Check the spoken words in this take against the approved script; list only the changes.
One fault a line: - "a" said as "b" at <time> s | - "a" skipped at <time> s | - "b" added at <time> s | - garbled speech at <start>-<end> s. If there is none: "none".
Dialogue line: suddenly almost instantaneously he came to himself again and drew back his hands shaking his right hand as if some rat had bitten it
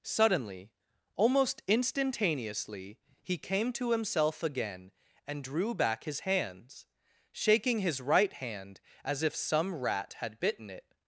none